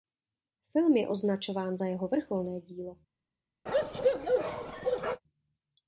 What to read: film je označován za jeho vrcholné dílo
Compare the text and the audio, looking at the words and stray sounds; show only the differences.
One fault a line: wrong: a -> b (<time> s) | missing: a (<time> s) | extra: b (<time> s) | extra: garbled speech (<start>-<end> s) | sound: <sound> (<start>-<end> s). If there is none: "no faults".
sound: bark (3.7-5.2 s)